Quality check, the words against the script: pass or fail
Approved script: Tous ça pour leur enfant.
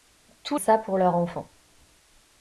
pass